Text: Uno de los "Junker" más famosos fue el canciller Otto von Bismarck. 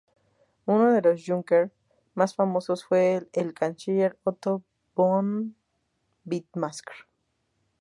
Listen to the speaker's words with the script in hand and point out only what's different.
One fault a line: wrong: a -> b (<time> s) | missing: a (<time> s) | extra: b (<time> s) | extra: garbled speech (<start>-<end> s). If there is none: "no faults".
no faults